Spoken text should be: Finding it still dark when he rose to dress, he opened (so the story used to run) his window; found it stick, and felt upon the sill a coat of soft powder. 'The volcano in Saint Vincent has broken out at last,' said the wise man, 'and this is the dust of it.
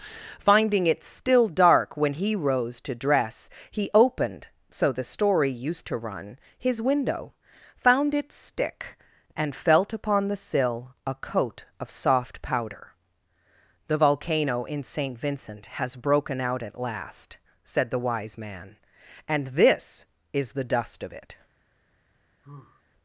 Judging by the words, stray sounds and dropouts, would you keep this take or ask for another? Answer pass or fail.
fail